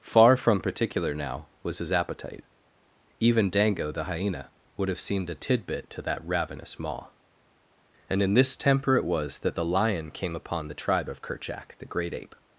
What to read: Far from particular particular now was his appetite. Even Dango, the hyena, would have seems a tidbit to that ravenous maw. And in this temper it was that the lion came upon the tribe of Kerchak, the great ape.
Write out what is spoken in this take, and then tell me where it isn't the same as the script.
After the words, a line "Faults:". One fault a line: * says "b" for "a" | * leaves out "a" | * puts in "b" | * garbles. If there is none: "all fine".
Far from particular now was his appetite. Even Dango, the hyena, would have seemed a tidbit to that ravenous maw. And in this temper it was that the lion came upon the tribe of Kerchak, the great ape.
Faults:
* leaves out "particular"
* says "seemed" for "seems"